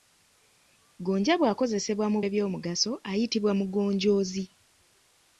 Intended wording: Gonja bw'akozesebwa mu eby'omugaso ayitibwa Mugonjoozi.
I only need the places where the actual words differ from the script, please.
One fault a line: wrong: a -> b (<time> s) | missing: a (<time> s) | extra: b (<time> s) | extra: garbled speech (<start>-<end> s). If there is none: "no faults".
no faults